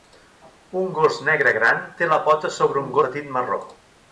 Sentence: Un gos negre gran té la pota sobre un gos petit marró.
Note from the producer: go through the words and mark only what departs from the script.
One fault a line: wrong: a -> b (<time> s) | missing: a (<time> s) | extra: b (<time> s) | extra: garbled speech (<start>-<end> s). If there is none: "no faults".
missing: gos (3.0 s)